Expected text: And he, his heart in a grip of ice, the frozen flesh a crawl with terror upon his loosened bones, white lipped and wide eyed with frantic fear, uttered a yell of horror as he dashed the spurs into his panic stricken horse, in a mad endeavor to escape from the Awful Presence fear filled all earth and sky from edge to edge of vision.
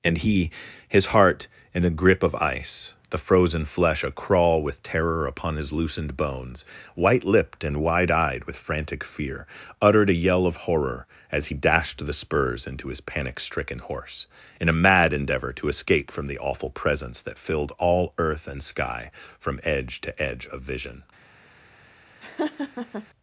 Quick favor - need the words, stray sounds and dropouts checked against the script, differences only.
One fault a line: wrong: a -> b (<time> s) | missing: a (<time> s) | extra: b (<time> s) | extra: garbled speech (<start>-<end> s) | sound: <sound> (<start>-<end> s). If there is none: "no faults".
wrong: fear -> that (17.2 s)
sound: laugh (22.2-23.1 s)